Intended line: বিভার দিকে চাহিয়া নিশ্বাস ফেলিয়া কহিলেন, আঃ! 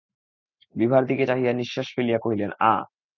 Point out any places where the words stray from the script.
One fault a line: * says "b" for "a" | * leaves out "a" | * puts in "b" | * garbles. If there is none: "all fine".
all fine